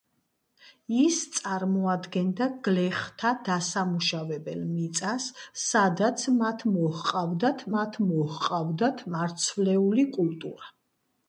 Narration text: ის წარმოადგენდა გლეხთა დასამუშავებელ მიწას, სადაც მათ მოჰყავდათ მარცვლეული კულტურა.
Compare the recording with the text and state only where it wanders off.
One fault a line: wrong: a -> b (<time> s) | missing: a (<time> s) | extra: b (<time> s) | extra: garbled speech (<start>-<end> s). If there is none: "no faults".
extra: მათ მოჰყავდათ (7.7 s)